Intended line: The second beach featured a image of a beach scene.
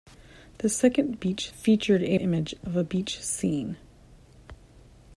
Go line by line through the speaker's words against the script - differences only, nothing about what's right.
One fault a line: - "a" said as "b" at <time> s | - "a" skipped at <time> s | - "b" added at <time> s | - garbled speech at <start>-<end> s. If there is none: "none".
none